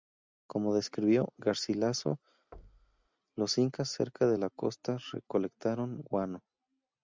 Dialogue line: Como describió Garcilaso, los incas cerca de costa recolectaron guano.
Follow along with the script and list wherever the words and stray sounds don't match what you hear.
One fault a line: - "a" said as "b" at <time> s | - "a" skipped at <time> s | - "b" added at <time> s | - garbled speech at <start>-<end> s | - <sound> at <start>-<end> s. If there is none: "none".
- thud at 2.5-3.1 s
- "la" added at 4.3 s